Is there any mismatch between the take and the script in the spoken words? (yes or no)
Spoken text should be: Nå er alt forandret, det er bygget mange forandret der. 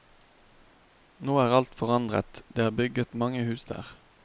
yes